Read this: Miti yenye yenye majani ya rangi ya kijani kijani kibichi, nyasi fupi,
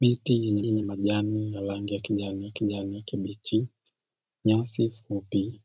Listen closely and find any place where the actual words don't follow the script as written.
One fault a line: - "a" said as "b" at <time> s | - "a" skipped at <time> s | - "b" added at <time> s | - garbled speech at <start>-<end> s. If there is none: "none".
none